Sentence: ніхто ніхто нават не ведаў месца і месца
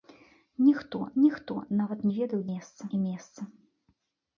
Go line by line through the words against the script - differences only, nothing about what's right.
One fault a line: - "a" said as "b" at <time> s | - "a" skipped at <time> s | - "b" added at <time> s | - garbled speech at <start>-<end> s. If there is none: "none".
none